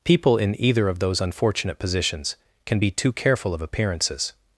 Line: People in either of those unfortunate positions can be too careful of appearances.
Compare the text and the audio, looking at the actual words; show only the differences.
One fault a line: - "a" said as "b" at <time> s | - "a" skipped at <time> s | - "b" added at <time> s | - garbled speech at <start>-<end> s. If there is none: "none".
none